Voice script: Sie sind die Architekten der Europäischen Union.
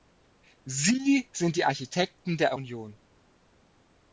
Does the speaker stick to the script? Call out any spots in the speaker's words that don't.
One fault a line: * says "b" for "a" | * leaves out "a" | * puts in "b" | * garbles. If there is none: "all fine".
* leaves out "Europäischen"